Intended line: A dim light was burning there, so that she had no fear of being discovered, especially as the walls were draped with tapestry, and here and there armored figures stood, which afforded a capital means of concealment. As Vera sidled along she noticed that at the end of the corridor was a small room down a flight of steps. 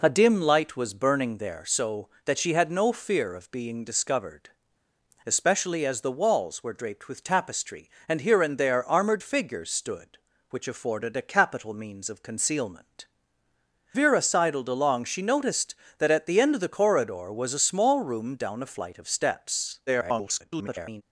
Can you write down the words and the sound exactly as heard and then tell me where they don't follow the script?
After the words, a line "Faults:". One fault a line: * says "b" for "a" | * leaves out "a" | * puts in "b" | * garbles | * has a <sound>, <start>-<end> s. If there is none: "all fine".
A dim light was burning there, so that she had no fear of being discovered, especially as the walls were draped with tapestry, and here and there armored figures stood, which afforded a capital means of concealment. Vera sidled along she noticed that at the end of the corridor was a small room down a flight of steps. [garbled]
Faults:
* leaves out "As"
* garbles